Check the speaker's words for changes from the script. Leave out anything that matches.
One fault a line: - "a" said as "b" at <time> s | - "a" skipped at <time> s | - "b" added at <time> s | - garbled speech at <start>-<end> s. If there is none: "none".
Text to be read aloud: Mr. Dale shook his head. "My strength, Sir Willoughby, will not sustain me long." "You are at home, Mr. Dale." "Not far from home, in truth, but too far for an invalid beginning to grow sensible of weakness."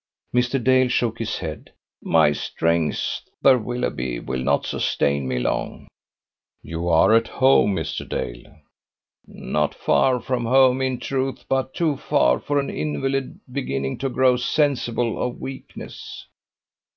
none